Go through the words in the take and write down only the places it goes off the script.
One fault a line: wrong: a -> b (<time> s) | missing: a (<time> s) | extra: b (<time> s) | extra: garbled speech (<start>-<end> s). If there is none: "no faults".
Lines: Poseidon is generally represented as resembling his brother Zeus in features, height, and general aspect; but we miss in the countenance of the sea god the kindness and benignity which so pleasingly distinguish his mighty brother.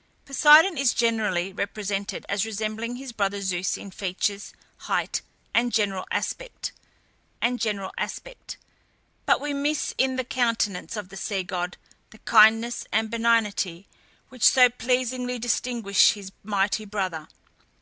extra: and general aspect (7.4 s)